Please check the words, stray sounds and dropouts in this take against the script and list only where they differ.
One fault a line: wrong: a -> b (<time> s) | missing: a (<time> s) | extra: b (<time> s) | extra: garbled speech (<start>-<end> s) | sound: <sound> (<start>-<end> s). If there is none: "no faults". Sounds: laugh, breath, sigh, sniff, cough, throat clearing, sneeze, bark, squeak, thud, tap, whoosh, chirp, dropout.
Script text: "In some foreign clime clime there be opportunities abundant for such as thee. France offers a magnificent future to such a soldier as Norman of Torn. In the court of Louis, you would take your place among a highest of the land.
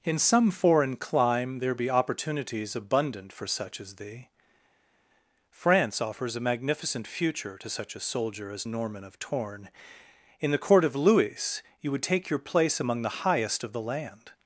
missing: clime (1.6 s)
wrong: a -> the (13.0 s)